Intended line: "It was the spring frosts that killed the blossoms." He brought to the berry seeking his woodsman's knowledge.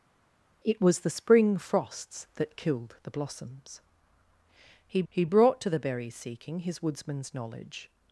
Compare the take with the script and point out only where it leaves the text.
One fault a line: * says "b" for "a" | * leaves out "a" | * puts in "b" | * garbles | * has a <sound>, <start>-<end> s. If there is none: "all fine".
* puts in "he"